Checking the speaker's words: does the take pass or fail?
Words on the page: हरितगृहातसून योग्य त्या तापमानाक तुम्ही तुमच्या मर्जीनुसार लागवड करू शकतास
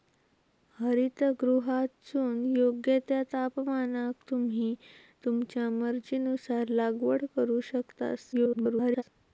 fail